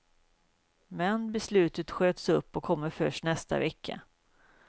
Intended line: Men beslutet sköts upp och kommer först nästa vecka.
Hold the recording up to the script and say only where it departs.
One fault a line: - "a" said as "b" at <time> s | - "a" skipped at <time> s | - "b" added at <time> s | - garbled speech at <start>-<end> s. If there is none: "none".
none